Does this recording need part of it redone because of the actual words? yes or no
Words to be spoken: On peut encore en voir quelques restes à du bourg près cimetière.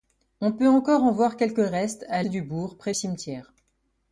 no